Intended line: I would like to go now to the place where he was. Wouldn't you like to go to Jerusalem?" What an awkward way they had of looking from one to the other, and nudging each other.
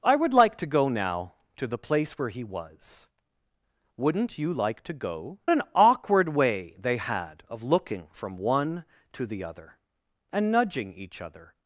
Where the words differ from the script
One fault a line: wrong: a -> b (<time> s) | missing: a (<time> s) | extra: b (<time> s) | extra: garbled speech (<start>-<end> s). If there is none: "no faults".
missing: to Jerusalem What (5.4 s)